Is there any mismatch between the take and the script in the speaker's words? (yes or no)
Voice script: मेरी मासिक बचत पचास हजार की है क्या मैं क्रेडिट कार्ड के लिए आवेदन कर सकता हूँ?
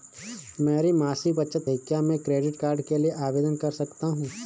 yes